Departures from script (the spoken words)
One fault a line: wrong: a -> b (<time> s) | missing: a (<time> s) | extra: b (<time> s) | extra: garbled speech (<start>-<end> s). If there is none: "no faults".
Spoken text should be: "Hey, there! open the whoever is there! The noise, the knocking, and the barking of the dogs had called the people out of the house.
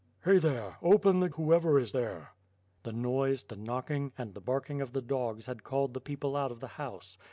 no faults